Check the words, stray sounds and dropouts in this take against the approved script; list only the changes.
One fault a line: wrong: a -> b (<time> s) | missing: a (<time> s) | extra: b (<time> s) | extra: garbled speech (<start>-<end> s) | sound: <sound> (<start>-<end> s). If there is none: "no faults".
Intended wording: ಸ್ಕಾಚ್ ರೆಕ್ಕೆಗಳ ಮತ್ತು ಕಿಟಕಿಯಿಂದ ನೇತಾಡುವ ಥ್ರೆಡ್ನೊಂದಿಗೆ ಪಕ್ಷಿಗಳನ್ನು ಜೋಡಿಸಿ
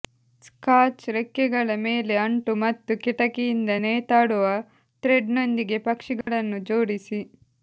extra: ಮೇಲೆ ಅಂಟು (1.8 s)
sound: dropout (6.2-6.3 s)